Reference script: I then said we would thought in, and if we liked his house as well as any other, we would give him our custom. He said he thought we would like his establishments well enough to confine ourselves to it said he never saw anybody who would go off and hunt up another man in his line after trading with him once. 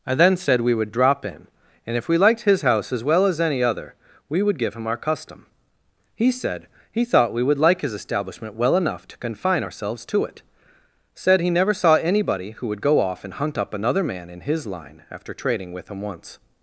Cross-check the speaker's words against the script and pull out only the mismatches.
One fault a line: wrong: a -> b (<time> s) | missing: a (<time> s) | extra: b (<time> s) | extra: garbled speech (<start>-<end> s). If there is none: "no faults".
wrong: thought -> drop (0.9 s)
wrong: establishments -> establishment (7.9 s)